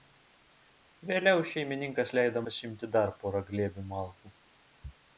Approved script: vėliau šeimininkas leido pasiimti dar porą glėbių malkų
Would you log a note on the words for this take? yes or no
no